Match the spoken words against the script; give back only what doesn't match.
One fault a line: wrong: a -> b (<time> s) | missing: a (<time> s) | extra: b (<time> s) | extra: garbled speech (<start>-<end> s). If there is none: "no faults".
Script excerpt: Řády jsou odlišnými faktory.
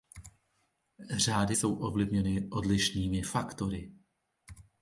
extra: ovlivněny (1.7 s)